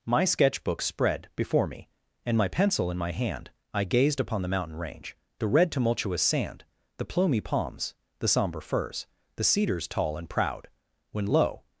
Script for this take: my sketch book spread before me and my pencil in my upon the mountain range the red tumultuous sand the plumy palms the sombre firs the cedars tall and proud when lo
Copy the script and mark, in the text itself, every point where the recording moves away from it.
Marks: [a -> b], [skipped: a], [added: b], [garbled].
my sketch book spread before me and my pencil in my [added: hand i gazed] upon the mountain range the red tumultuous sand the plumy palms the sombre firs the cedars tall and proud when lo